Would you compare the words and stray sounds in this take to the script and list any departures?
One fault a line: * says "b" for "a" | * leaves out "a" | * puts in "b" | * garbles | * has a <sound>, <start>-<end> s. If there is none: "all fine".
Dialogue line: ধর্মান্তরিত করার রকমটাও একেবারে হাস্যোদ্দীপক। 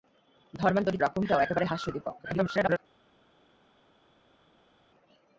* leaves out "করার"
* garbles